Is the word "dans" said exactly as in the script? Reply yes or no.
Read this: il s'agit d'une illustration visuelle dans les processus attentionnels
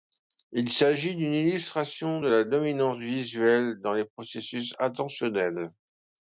yes